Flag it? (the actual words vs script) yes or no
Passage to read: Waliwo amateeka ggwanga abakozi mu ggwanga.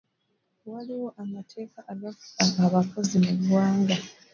yes